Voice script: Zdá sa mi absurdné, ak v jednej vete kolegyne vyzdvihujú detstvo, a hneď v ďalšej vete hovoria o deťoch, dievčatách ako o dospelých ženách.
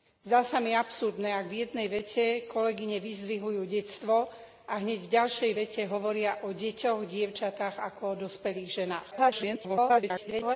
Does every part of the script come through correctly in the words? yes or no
no